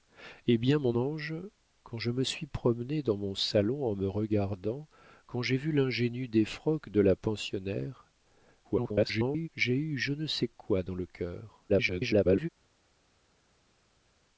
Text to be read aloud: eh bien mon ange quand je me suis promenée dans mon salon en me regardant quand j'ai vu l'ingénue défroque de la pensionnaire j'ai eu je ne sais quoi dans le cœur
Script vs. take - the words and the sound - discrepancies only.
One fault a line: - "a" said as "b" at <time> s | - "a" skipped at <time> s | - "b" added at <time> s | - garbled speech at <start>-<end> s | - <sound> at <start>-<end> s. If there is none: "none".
- garbled speech at 8.6-9.5 s
- garbled speech at 11.7-12.5 s